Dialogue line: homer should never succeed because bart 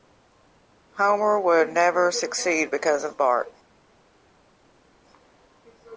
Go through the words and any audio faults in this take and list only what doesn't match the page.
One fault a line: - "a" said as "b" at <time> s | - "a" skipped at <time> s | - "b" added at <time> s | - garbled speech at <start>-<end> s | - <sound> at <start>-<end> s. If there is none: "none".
- "should" said as "would" at 1.4 s
- "of" added at 3.0 s